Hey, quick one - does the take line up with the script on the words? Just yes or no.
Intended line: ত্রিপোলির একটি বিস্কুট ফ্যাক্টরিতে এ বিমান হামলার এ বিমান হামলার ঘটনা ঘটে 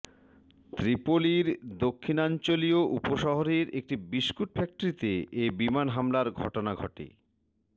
no